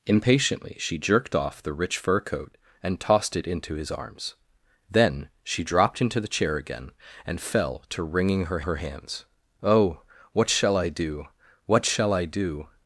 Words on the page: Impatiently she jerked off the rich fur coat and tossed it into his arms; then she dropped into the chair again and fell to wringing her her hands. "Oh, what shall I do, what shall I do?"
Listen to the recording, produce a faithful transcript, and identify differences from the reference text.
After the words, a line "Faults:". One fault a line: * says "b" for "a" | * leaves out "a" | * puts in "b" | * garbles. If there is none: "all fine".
Impatiently she jerked off the rich fur coat and tossed it into his arms; then she dropped into the chair again and fell to wringing her her hands. "Oh, what shall I do, what shall I do?"
Faults:
all fine